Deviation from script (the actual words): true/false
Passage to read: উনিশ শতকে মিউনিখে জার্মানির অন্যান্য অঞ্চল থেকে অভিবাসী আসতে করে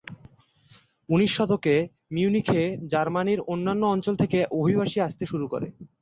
true